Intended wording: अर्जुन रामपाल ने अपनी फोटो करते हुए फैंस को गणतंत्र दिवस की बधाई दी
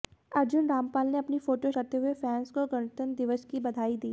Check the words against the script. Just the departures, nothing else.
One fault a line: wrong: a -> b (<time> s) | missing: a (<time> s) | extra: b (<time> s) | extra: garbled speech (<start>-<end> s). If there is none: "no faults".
no faults